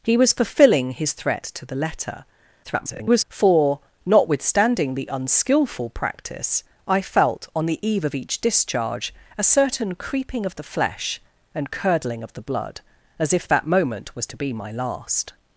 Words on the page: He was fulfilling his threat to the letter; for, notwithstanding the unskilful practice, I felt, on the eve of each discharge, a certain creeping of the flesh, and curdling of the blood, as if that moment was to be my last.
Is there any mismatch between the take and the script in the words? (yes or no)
yes